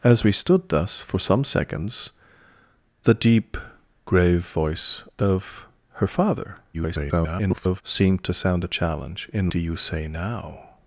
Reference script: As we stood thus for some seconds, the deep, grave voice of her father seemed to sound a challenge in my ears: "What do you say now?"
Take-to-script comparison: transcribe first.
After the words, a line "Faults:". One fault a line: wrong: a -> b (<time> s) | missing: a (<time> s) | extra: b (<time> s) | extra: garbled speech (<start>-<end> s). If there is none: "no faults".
As we stood thus for some seconds, the deep, grave voice of her father [garbled] seemed to sound a challenge in do you say now?"
Faults:
extra: garbled speech (6.7-7.8 s)
missing: my ears What (9.5 s)